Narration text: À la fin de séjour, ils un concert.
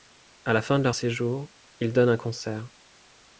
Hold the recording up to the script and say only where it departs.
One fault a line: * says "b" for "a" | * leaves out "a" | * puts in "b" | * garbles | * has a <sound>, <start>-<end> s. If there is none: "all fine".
* puts in "leur"
* puts in "donnent"